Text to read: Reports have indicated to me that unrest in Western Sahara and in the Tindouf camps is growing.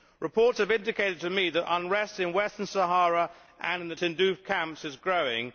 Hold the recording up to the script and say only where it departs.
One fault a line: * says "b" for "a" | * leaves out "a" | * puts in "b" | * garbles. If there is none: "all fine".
all fine